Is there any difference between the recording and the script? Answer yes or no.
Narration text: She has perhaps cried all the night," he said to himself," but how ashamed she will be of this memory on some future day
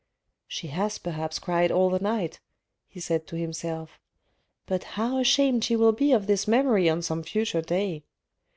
no